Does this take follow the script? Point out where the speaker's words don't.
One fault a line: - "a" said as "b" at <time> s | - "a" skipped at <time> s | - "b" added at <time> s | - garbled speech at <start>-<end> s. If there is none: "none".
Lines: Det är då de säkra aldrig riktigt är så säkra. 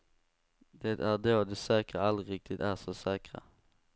none